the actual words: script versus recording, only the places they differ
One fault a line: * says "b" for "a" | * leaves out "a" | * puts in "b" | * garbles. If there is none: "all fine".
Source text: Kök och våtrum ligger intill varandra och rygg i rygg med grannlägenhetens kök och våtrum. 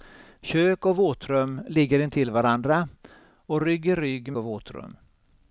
* leaves out "med grannlägenhetens kök"